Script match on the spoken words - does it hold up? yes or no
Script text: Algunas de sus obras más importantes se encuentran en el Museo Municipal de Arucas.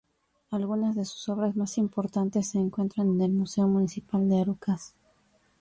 yes